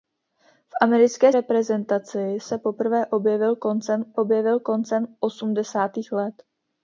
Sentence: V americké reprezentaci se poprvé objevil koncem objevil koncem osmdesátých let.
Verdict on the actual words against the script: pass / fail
pass